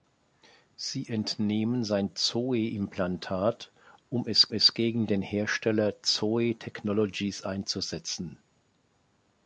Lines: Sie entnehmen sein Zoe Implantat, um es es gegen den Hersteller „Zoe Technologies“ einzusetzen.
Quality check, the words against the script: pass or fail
pass